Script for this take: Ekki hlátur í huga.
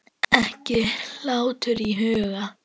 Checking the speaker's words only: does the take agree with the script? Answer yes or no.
yes